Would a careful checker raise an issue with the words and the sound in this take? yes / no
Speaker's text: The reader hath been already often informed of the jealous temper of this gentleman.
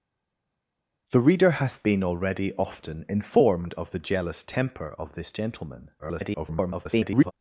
yes